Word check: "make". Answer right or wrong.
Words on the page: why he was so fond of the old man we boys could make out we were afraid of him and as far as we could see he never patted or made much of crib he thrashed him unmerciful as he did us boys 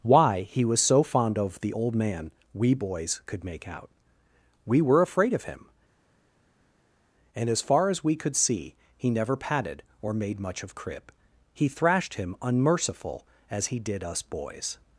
right